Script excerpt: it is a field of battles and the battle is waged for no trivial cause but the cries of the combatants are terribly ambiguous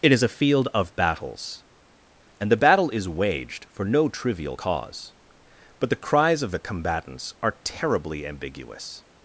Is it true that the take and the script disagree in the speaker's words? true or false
false